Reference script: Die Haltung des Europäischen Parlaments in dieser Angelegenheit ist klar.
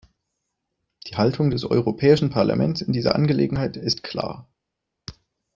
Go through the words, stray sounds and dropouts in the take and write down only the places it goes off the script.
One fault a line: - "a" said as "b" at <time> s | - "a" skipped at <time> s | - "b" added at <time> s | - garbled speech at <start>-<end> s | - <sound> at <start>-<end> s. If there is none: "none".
none